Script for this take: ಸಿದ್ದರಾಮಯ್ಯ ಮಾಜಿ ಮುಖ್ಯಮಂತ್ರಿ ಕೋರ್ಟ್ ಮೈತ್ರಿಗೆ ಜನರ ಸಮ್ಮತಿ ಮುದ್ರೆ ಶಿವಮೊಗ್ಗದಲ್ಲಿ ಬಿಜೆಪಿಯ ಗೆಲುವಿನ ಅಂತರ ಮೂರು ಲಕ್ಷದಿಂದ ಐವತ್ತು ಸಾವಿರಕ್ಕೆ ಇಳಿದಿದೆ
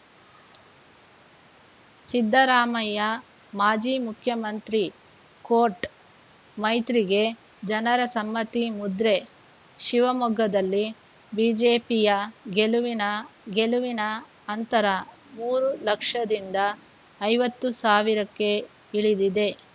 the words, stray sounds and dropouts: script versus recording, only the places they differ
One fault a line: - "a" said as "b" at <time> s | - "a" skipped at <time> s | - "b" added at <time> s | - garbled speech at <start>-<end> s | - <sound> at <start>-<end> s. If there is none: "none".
- "ಗೆಲುವಿನ" added at 13.5 s